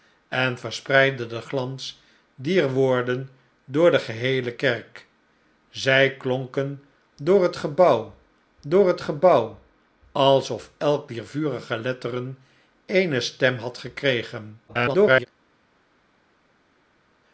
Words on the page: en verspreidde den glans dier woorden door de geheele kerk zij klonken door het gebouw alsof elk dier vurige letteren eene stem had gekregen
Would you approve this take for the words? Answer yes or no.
no